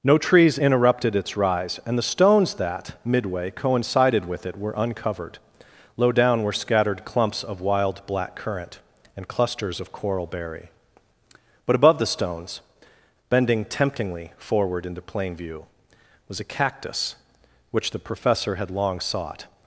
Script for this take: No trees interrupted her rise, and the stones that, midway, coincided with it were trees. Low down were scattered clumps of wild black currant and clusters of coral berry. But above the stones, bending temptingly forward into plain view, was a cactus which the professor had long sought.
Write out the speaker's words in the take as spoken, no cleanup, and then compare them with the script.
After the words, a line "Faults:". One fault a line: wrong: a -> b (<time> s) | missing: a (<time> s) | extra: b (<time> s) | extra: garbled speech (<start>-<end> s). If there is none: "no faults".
No trees interrupted its rise, and the stones that, midway, coincided with it were uncovered. Low down were scattered clumps of wild black currant and clusters of coral berry. But above the stones, bending temptingly forward into plain view, was a cactus which the professor had long sought.
Faults:
wrong: her -> its (1.2 s)
wrong: trees -> uncovered (4.8 s)